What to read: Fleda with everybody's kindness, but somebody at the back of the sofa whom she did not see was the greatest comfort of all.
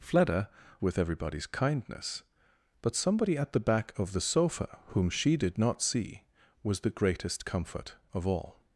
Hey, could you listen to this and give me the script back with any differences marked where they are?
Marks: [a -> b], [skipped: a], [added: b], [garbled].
Fleda with everybody's kindness, but somebody at the back of the sofa whom she did not see was the greatest comfort of all.